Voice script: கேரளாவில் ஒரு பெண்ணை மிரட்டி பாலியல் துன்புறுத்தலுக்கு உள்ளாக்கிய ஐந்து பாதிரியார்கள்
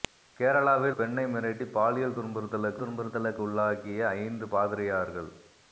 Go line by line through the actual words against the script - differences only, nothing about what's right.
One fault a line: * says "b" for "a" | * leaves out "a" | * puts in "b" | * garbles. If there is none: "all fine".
* leaves out "ஒரு"
* puts in "துன்புறுத்தலுக்கு"